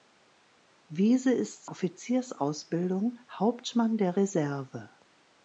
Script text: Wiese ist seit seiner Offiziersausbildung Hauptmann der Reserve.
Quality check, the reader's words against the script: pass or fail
fail